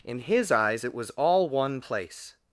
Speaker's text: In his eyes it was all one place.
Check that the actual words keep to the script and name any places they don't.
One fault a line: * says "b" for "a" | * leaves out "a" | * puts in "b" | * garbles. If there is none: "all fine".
all fine